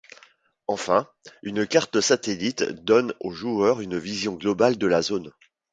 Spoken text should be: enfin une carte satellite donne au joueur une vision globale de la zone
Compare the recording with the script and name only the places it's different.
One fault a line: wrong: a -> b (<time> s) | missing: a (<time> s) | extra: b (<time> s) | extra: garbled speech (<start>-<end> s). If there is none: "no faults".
no faults